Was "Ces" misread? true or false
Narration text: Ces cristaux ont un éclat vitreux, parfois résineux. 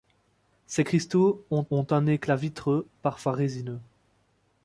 false